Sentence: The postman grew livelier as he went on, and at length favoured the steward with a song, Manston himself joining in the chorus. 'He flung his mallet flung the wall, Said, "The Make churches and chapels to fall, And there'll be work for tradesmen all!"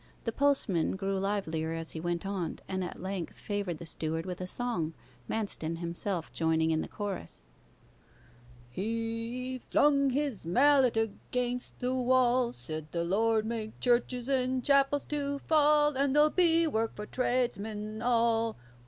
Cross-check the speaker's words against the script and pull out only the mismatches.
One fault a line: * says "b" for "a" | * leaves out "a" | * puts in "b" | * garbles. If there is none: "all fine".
* says "against" for "flung"
* puts in "Lord"